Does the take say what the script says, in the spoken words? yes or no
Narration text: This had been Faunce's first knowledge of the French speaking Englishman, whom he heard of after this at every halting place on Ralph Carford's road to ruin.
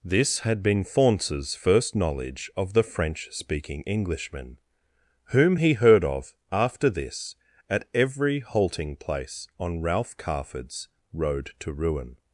yes